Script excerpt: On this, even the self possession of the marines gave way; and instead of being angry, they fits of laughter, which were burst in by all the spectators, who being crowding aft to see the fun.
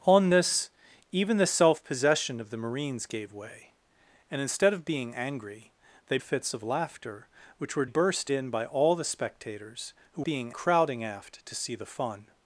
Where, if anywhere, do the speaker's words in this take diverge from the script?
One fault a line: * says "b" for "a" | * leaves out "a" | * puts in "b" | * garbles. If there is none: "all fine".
all fine